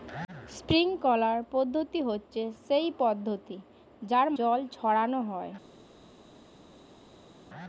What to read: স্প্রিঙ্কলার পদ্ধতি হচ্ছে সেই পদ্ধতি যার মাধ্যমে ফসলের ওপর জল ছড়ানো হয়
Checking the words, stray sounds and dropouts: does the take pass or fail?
fail